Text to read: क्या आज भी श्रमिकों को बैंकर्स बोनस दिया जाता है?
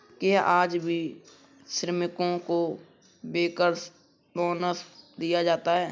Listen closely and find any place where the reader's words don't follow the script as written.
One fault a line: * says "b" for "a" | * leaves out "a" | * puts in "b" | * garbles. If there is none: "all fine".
all fine